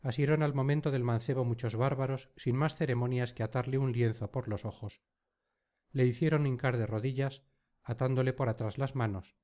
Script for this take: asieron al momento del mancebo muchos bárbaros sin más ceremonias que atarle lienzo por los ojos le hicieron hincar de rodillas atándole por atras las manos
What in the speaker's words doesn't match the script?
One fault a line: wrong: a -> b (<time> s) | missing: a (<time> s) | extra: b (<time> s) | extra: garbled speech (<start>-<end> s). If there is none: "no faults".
extra: un (3.8 s)